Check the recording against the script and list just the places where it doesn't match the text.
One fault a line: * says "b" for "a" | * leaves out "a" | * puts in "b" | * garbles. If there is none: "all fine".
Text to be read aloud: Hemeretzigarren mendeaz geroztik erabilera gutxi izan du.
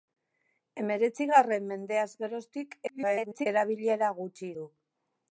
* garbles
* leaves out "izan"